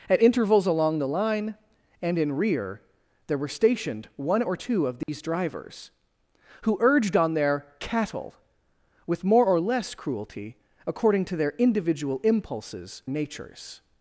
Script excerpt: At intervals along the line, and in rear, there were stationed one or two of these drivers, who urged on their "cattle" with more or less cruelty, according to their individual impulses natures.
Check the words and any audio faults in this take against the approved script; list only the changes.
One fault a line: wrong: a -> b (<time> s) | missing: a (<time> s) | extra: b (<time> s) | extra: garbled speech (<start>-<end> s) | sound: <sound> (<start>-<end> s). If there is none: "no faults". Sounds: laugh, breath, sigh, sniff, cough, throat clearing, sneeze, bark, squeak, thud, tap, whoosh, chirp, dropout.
sound: dropout (5.0-5.1 s)